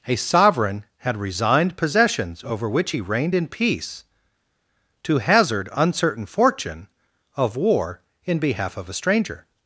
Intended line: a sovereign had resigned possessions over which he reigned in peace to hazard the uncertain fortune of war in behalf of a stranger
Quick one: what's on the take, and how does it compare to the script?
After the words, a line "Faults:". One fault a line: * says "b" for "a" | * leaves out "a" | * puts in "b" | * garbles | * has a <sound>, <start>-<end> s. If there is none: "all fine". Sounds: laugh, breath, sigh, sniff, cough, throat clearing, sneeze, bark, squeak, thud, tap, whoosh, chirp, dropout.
a sovereign had resigned possessions over which he reigned in peace to hazard uncertain fortune of war in behalf of a stranger
Faults:
* leaves out "the"